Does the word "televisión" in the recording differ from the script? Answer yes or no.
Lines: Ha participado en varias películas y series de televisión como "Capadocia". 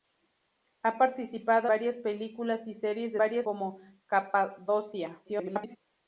yes